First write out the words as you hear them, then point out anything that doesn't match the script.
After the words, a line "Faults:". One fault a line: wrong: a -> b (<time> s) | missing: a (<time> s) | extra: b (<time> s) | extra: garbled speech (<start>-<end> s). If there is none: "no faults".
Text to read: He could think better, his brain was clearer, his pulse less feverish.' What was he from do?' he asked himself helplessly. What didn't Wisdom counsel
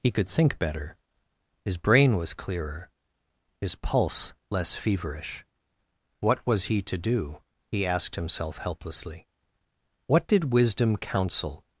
He could think better, his brain was clearer, his pulse less feverish.' What was he to do?' he asked himself helplessly. What did Wisdom counsel
Faults:
wrong: from -> to (6.8 s)
wrong: didn't -> did (10.2 s)